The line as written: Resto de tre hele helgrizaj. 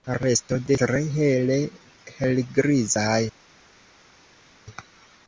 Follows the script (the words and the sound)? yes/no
yes